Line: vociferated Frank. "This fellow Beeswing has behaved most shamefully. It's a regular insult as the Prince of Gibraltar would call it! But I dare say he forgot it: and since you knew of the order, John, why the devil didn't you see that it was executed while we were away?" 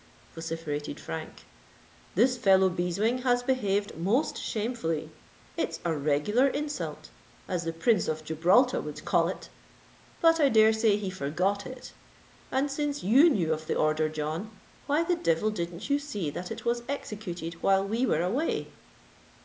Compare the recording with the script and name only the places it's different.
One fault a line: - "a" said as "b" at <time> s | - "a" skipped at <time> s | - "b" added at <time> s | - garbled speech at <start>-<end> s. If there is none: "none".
none